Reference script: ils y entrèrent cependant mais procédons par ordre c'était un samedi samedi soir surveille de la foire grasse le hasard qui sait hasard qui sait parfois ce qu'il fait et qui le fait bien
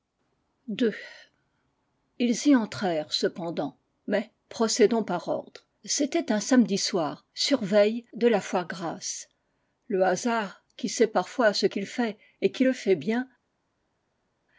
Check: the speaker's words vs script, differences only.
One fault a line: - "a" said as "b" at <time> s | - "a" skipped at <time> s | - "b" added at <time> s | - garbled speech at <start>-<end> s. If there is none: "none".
- "samedi" skipped at 6.8 s
- "hasard qui sait" skipped at 11.1 s